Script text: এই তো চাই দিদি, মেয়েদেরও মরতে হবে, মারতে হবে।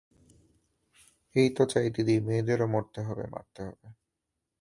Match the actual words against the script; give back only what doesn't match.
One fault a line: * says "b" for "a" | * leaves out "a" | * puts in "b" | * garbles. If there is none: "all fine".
all fine